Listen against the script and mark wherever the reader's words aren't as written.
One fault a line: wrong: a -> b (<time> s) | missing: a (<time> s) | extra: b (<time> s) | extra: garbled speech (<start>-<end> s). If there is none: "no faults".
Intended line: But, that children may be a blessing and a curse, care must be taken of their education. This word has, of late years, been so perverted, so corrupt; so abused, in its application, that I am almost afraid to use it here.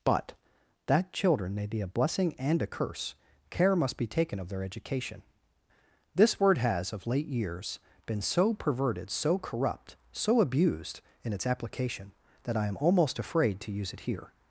no faults